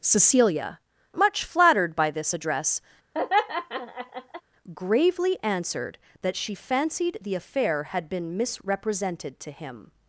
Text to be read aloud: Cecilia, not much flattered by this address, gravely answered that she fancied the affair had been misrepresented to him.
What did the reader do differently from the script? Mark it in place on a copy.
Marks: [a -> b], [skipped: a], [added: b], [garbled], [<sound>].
Cecilia, [skipped: not] much flattered by this address, [laugh] gravely answered that she fancied the affair had been misrepresented to him.